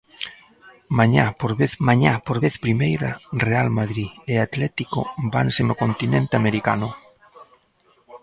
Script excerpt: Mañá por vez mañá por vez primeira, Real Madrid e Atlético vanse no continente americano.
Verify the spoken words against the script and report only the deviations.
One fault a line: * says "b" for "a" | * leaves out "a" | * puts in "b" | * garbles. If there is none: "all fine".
all fine